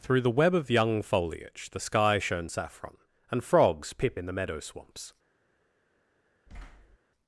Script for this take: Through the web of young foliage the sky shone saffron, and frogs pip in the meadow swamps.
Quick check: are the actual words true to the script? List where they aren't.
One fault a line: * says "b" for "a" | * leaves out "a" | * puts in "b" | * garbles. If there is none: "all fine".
all fine